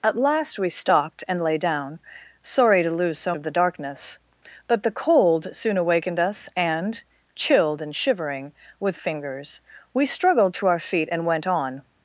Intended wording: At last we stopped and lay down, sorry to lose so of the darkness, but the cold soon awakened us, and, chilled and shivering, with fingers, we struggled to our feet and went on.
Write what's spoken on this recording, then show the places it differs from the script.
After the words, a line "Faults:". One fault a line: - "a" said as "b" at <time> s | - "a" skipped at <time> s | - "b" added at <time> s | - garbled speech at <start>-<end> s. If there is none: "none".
At last we stopped and lay down, sorry to lose so of the darkness, but the cold soon awakened us, and, chilled and shivering, with fingers, we struggled to our feet and went on.
Faults:
none